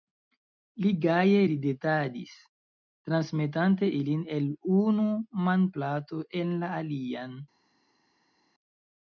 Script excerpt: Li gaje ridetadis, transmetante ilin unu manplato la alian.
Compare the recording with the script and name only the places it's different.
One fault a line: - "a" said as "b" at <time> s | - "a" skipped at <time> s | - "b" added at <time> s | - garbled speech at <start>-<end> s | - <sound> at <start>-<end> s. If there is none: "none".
- "el" added at 4.4 s
- "en" added at 6.4 s